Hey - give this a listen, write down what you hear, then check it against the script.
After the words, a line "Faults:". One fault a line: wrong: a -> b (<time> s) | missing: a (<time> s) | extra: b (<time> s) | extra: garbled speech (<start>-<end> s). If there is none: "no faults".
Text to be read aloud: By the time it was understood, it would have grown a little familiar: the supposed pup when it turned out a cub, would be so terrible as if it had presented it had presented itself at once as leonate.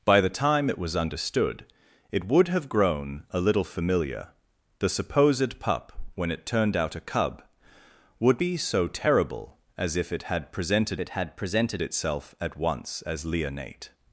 By the time it was understood, it would have grown a little familiar: the supposed pup when it turned out a cub, would be so terrible as if it had presented it had presented itself at once as leonate.
Faults:
no faults